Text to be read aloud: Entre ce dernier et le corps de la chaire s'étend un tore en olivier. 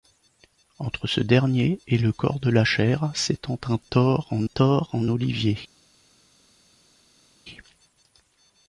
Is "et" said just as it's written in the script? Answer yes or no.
yes